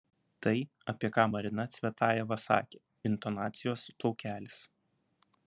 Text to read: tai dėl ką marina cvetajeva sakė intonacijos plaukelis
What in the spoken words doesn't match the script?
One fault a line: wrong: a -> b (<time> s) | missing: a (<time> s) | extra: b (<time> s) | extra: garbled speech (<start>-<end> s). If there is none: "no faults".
wrong: dėl -> apie (0.9 s)